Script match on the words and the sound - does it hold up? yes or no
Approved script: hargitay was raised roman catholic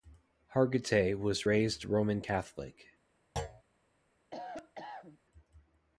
no